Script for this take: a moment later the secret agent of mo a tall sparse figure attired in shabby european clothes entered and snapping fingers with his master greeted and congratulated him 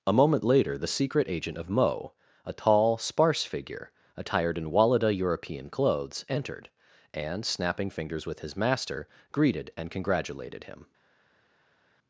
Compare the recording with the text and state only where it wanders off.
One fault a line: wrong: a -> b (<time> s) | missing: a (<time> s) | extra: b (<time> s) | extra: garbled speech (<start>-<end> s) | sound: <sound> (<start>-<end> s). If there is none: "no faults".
wrong: shabby -> walada (4.7 s)